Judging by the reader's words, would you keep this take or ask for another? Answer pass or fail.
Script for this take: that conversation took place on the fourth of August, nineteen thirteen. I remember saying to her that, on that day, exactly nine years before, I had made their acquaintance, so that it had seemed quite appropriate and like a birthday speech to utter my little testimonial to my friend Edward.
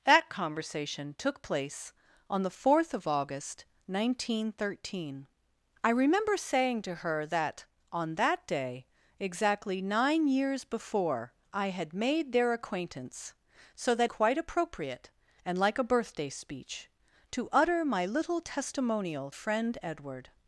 fail